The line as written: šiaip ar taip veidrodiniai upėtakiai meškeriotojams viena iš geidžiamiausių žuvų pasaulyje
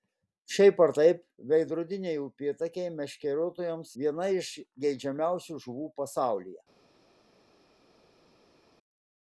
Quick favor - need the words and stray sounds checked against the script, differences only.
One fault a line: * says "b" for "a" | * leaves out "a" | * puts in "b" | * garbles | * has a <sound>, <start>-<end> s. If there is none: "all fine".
all fine